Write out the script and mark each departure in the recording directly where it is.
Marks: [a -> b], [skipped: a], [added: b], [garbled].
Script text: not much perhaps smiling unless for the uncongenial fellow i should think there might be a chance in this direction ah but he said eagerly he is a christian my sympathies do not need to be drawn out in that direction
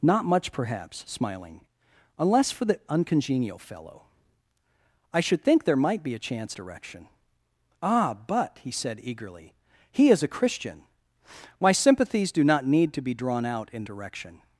not much perhaps smiling unless for the uncongenial fellow i should think there might be a chance [skipped: in this] direction ah but he said eagerly he is a christian my sympathies do not need to be drawn out in [skipped: that] direction